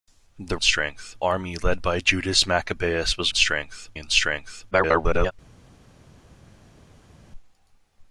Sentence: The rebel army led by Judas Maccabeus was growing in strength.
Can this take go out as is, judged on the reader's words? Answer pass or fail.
fail